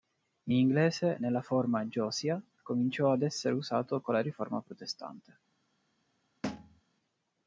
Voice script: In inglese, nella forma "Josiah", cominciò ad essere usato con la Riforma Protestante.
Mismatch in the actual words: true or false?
false